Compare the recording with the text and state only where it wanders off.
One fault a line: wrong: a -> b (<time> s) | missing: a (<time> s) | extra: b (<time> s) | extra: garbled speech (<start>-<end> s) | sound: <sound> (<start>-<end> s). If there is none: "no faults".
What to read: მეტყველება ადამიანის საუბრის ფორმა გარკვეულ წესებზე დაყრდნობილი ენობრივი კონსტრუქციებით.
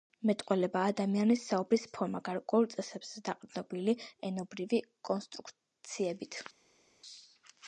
no faults